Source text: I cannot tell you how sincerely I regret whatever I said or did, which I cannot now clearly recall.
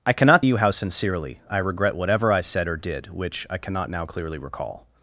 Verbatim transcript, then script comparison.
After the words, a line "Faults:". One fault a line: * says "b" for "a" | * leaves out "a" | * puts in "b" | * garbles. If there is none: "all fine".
I cannot you how sincerely I regret whatever I said or did, which I cannot now clearly recall.
Faults:
* leaves out "tell"